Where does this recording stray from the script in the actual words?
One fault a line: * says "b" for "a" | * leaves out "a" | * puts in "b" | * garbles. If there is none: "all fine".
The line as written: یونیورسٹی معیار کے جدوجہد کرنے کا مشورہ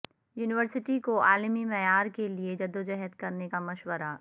* puts in "کو عالمی"
* puts in "لئے"